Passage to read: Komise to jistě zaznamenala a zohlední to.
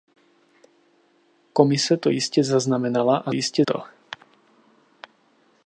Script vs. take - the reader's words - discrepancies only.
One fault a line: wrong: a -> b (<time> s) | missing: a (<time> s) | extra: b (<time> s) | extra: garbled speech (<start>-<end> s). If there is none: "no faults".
wrong: zohlední -> jistě (3.3 s)